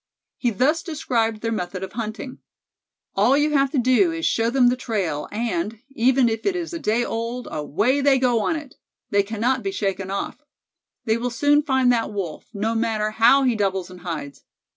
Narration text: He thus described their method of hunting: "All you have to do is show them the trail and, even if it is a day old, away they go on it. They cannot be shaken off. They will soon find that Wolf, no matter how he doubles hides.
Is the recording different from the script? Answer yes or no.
yes